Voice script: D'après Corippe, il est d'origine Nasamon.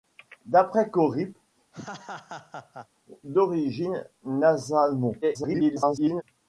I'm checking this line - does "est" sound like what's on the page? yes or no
no